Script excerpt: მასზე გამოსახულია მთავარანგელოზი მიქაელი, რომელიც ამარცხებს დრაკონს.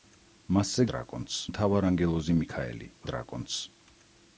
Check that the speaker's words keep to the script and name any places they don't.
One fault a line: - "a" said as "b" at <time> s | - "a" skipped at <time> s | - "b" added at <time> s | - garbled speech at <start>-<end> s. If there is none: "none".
- "გამოსახულია" said as "დრაკონს" at 0.9 s
- "რომელიც ამარცხებს" skipped at 2.9 s